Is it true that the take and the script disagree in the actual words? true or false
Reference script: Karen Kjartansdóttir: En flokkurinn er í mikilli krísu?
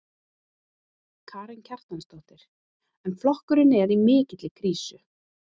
false